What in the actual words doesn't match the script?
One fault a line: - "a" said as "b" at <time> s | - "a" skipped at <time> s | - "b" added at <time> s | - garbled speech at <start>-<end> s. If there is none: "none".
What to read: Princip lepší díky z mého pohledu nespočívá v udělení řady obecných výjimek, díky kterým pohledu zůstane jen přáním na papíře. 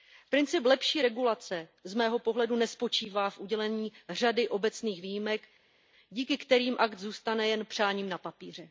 - "díky" said as "regulace" at 1.0 s
- "pohledu" said as "akt" at 6.8 s